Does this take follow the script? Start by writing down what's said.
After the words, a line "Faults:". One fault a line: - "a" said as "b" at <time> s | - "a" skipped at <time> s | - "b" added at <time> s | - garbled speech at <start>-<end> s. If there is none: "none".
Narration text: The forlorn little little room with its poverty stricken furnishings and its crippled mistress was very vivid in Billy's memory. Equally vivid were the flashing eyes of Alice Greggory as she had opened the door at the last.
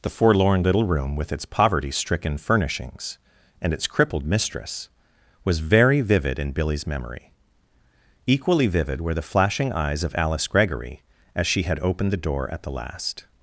The forlorn little room with its poverty stricken furnishings and its crippled mistress was very vivid in Billy's memory. Equally vivid were the flashing eyes of Alice Greggory as she had opened the door at the last.
Faults:
- "little" skipped at 0.8 s